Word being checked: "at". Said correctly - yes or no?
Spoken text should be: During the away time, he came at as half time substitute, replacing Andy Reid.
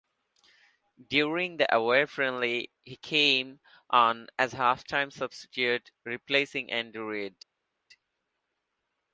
no